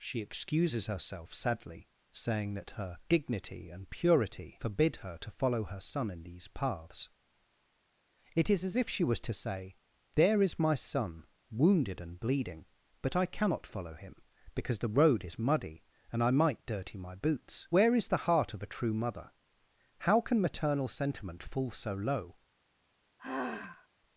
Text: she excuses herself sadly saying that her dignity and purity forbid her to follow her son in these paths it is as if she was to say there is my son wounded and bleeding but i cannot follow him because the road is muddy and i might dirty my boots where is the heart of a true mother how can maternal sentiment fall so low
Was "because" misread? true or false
false